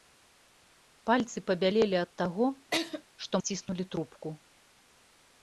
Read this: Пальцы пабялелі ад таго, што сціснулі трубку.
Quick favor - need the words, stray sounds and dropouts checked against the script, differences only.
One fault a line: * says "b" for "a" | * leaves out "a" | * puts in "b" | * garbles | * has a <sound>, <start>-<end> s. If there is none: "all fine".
* has a laugh, 2.7-3.0 s